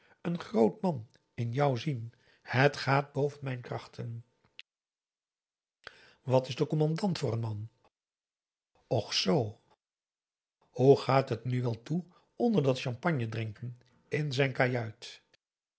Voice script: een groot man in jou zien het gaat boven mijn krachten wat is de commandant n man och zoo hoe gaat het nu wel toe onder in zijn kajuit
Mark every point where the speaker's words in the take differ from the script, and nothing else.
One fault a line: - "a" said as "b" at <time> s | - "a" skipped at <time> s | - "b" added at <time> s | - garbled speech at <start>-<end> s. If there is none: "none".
- "voor" added at 7.2 s
- "dat champagne drinken" added at 12.6 s